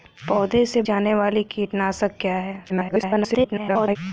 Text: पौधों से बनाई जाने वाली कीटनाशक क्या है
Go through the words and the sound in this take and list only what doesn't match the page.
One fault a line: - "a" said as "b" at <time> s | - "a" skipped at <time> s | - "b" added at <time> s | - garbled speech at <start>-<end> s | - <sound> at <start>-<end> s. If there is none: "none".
- "बनाई" skipped at 0.8 s
- garbled speech at 2.7-4.0 s